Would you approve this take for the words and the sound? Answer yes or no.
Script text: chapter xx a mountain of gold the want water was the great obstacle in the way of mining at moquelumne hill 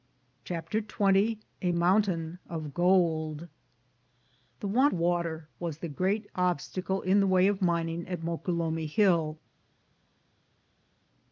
yes